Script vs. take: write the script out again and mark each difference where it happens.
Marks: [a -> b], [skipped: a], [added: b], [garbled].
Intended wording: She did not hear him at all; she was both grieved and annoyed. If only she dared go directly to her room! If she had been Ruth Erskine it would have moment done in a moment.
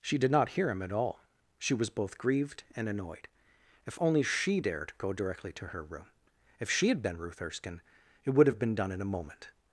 She did not hear him at all; she was both grieved and annoyed. If only she dared go directly to her room! If she had been Ruth Erskine it would have [moment -> been] done in a moment.